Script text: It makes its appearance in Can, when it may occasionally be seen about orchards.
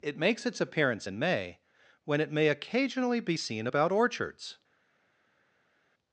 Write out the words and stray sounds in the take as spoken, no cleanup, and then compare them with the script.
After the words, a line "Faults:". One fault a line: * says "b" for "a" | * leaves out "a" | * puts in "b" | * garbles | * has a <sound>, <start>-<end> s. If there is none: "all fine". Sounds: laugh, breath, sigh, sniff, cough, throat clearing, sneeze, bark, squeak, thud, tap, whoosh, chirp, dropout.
It makes its appearance in May, when it may occasionally be seen about orchards.
Faults:
* says "May" for "Can"